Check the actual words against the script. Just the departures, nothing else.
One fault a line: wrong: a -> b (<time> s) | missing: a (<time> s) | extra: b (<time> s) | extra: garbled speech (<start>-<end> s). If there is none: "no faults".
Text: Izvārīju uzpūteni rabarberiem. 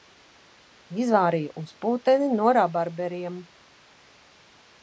extra: no (2.4 s)